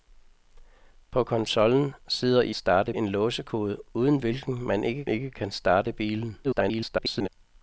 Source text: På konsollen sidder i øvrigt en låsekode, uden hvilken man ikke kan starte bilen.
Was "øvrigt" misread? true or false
true